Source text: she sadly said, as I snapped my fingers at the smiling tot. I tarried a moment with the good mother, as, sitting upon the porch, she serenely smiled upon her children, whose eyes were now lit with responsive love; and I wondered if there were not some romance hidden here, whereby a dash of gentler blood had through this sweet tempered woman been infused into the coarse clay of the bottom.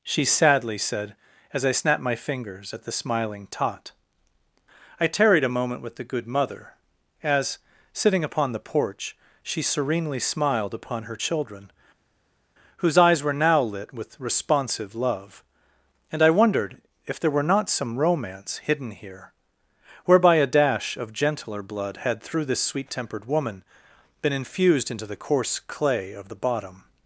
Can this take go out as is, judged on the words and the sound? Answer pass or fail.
pass